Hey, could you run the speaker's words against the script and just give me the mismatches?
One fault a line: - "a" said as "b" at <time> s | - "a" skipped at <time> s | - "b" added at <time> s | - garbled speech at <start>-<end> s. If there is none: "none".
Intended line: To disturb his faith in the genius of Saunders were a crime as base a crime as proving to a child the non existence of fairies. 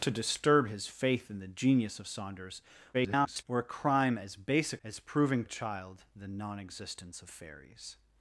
- garbled speech at 2.9-3.4 s
- "crime" skipped at 4.8 s
- "to" skipped at 5.4 s